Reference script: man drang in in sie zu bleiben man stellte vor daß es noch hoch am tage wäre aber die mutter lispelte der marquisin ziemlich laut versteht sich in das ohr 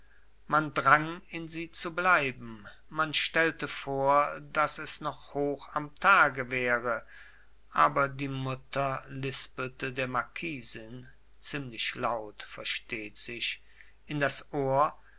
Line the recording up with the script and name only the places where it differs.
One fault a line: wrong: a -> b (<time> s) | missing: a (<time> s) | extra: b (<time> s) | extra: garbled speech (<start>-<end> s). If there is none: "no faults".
missing: in (1.5 s)